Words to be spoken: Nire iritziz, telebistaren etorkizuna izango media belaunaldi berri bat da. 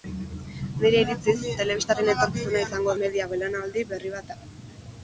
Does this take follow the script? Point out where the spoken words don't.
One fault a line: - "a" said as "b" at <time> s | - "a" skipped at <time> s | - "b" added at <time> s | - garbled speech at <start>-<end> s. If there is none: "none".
none